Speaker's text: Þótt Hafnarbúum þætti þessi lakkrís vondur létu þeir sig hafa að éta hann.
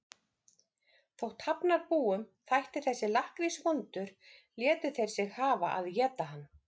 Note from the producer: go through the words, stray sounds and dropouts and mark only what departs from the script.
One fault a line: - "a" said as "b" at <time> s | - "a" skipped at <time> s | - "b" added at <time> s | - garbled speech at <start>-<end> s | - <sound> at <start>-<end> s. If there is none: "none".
none